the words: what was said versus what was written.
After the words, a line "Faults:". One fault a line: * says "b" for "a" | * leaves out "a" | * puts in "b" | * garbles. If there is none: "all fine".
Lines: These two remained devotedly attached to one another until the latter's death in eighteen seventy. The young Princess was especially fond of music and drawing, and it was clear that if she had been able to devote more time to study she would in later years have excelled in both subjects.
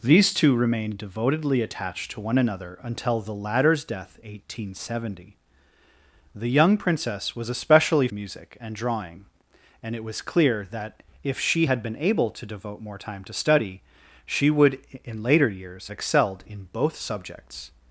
These two remained devotedly attached to one another until the latter's death eighteen seventy. The young Princess was especially music and drawing, and it was clear that if she had been able to devote more time to study she would in later years excelled in both subjects.
Faults:
* leaves out "in"
* leaves out "fond of"
* leaves out "have"